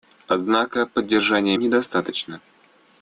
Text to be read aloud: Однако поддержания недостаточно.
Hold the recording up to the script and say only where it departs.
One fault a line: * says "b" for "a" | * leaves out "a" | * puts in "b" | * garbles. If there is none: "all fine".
all fine